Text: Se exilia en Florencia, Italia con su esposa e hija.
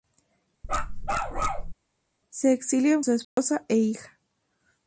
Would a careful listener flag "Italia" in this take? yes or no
yes